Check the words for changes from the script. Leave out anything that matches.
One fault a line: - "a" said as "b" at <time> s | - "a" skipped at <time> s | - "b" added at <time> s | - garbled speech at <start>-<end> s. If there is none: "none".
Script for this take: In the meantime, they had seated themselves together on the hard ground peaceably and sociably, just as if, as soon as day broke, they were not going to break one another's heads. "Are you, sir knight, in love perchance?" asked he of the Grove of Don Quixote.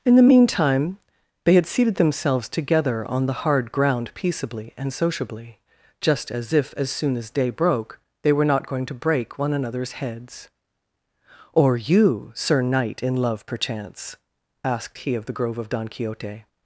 - "Are" said as "Or" at 11.5 s